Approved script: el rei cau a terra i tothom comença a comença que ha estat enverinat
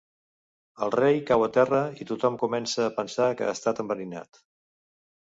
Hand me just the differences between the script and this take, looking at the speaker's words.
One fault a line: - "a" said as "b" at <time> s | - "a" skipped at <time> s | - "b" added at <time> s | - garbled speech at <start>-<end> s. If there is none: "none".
- "comença" said as "pensar" at 3.0 s